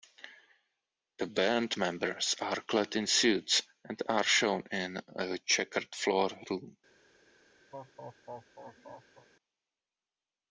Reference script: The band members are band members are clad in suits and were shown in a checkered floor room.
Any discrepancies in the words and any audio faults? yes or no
yes